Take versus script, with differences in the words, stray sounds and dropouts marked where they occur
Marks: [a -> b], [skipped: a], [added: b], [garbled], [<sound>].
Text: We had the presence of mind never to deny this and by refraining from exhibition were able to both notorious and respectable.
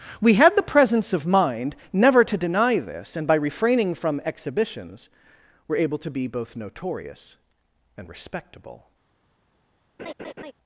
We had the presence of mind never to deny this and by refraining from [exhibition -> exhibitions] were able to [added: be] both notorious and respectable. [laugh]